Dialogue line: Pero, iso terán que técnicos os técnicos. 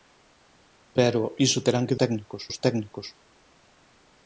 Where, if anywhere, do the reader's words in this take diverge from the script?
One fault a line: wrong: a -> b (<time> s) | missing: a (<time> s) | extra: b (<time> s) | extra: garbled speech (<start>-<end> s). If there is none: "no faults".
no faults